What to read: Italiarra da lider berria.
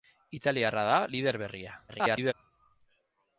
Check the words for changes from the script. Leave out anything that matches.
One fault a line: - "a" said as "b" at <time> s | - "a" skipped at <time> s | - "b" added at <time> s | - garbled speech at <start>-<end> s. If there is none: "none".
- garbled speech at 1.9-2.3 s